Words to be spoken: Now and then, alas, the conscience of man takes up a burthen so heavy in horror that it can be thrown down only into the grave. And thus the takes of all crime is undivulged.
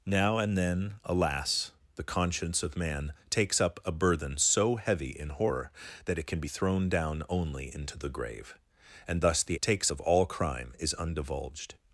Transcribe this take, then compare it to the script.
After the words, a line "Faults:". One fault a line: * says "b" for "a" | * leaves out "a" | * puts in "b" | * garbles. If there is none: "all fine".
Now and then, alas, the conscience of man takes up a burthen so heavy in horror that it can be thrown down only into the grave. And thus the takes of all crime is undivulged.
Faults:
all fine